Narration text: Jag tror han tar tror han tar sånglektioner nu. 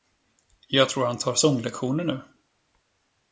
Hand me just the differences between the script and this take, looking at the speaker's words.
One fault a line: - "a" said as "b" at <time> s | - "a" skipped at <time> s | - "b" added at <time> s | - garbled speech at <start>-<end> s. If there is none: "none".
- "tror han tar" skipped at 1.3 s